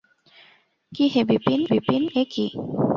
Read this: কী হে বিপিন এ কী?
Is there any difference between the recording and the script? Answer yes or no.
yes